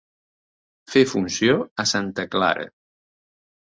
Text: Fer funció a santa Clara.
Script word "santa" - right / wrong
right